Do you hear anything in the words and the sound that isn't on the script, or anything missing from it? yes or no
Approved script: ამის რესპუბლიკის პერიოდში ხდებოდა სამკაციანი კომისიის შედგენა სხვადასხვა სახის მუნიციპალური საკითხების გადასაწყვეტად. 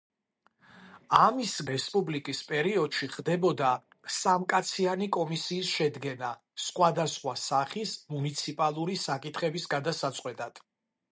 no